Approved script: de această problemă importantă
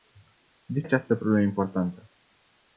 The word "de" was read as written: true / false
true